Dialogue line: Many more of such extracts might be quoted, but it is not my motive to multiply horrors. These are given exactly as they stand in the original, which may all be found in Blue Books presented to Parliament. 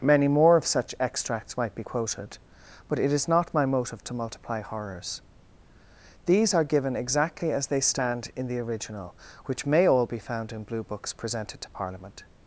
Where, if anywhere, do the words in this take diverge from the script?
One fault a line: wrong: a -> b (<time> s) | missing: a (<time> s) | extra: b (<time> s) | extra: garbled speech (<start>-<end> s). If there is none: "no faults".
no faults